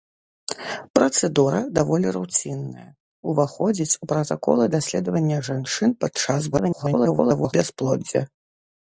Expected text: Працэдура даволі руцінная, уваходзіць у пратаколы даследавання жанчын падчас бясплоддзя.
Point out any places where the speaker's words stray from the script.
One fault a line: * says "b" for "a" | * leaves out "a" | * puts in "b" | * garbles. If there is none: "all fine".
* garbles